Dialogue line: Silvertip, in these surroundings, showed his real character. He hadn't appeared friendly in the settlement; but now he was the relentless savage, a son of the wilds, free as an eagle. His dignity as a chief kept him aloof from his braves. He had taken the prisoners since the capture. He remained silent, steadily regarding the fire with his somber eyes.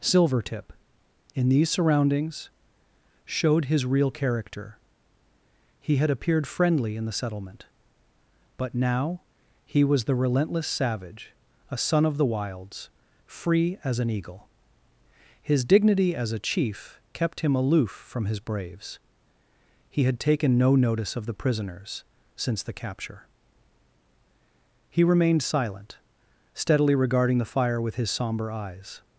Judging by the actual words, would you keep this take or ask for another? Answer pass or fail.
fail